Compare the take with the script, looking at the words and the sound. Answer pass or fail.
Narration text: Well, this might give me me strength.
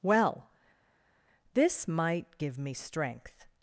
fail